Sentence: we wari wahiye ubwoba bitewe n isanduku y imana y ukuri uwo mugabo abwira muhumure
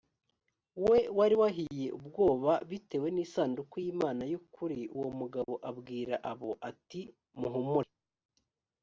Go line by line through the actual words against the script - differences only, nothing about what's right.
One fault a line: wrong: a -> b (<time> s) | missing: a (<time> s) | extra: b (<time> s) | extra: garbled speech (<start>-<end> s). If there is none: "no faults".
extra: abo ati (6.3 s)